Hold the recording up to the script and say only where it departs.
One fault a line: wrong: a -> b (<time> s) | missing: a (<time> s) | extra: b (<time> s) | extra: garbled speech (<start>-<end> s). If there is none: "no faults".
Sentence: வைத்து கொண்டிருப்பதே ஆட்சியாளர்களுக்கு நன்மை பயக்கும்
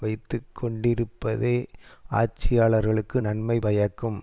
no faults